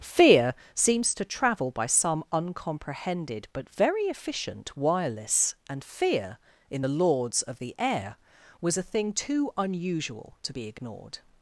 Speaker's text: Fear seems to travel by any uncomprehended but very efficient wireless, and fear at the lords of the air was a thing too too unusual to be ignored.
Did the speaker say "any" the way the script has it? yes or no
no